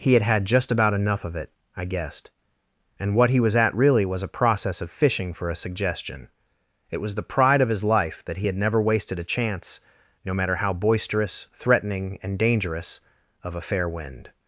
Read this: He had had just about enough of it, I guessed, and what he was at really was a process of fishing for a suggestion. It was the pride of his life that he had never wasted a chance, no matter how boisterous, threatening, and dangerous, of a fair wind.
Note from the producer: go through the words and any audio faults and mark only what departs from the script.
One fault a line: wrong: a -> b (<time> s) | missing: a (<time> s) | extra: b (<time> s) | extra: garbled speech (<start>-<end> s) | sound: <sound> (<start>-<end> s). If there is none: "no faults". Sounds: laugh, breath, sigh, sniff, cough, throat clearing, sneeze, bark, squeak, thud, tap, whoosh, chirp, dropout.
no faults